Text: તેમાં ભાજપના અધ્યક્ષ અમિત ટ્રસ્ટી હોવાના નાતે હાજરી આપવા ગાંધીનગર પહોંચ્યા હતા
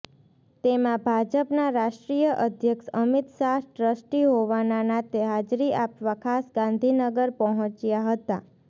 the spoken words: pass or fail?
fail